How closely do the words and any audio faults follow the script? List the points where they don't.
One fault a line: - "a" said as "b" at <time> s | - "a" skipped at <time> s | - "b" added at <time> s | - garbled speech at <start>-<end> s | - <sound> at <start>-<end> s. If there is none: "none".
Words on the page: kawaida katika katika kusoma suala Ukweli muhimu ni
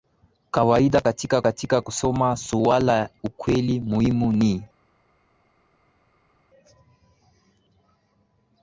none